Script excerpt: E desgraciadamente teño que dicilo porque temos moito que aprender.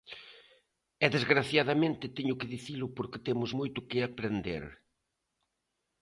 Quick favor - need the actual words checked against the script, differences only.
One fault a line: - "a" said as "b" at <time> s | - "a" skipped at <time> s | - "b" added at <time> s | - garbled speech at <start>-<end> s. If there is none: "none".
none